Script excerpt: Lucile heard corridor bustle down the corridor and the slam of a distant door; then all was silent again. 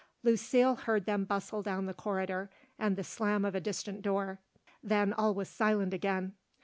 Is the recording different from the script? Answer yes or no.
yes